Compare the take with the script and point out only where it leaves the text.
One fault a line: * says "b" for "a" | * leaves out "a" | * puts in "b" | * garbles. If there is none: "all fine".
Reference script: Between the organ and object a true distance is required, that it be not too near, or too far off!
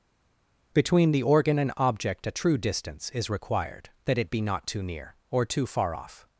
all fine